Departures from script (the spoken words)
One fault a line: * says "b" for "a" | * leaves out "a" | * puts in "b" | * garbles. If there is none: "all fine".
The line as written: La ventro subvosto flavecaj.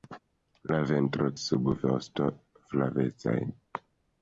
all fine